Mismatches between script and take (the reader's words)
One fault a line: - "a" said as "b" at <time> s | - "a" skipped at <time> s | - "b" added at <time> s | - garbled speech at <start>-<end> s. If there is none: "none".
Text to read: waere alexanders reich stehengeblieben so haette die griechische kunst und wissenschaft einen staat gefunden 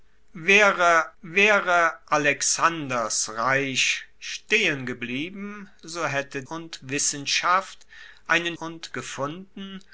- "waere" added at 1.2 s
- "die griechische kunst" skipped at 6.4 s
- "staat" said as "und" at 8.5 s